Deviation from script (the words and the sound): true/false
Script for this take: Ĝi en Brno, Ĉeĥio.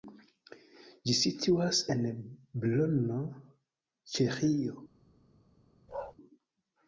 true